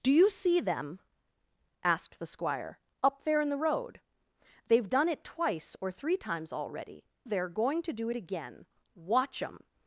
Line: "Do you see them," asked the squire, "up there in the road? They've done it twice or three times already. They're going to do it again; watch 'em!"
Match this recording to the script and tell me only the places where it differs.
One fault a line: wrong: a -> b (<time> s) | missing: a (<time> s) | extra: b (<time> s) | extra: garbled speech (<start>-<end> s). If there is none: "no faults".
no faults